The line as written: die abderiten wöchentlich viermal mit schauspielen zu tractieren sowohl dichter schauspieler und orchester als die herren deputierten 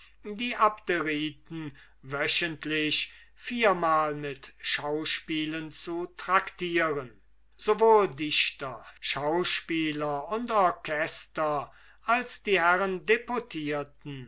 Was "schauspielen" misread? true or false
false